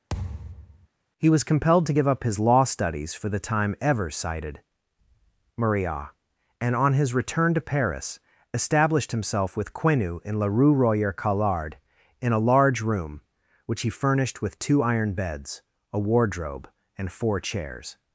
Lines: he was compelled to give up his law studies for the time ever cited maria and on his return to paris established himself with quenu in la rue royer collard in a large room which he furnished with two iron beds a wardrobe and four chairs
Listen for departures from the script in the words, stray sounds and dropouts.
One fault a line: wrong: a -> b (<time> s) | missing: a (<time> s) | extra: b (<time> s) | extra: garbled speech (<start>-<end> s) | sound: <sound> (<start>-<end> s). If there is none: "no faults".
sound: thud (0.1-0.9 s)